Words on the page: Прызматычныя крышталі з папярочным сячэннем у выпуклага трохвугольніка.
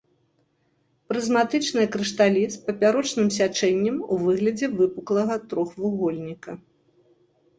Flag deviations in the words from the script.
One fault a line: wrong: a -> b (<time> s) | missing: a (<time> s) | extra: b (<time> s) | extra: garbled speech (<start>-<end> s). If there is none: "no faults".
extra: выглядзе (4.2 s)